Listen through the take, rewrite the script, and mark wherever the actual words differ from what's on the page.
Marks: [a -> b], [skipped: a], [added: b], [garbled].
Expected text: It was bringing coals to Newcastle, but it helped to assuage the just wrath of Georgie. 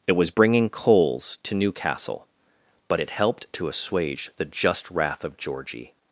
It was bringing coals to Newcastle, but it helped to assuage the just wrath of Georgie.